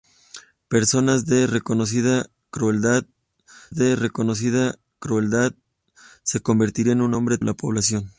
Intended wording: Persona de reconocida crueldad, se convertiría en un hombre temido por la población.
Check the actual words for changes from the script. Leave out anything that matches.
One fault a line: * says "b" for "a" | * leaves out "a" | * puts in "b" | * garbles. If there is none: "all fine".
* puts in "de reconocida crueldad"
* leaves out "temido por"